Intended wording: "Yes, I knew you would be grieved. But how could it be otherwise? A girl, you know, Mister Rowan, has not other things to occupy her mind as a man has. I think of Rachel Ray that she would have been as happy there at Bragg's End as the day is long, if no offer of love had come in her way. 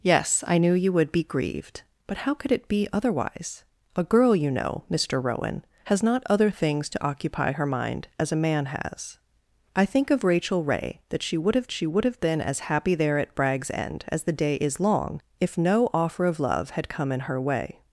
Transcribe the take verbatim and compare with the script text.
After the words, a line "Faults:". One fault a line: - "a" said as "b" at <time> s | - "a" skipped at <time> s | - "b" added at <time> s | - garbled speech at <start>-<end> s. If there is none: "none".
"Yes, I knew you would be grieved. But how could it be otherwise? A girl, you know, Mister Rowan, has not other things to occupy her mind as a man has. I think of Rachel Ray that she would have she would have been as happy there at Bragg's End as the day is long, if no offer of love had come in her way.
Faults:
- "she would have" added at 11.7 s